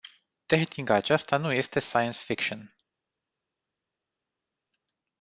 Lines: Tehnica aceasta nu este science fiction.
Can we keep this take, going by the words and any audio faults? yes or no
yes